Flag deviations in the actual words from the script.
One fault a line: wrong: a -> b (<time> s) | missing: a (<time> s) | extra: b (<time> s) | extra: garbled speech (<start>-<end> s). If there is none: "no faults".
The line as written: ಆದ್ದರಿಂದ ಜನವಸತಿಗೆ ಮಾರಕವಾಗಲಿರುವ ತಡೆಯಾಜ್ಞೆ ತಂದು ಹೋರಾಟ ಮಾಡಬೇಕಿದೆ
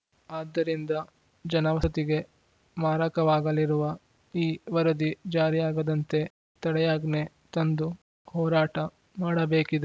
extra: ಈ ವರದಿ ಜಾರಿಯಾಗದಂತೆ (4.3 s)